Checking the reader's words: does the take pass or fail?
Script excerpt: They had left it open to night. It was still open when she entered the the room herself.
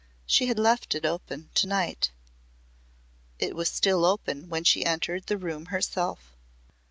fail